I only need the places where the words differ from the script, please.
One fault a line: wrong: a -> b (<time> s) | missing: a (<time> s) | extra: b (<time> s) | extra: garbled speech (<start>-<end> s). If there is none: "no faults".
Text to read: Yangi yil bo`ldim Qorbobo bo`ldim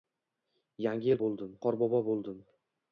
no faults